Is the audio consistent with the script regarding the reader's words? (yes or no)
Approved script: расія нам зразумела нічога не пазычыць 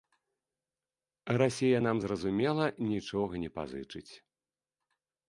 yes